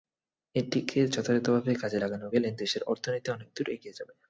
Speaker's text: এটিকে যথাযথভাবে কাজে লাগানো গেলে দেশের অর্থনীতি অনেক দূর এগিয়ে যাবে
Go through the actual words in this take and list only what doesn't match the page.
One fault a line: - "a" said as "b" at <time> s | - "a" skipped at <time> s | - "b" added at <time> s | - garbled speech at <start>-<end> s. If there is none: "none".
none